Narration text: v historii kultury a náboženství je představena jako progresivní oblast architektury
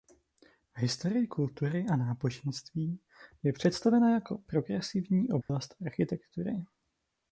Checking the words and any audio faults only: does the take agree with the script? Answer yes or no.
no